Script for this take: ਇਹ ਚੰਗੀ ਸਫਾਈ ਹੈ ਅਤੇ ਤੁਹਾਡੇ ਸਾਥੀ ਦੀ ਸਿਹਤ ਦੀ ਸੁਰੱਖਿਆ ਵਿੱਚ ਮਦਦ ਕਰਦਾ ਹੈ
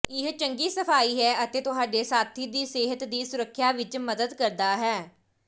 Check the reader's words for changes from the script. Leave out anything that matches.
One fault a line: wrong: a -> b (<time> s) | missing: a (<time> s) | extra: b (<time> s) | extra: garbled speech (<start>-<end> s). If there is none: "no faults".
no faults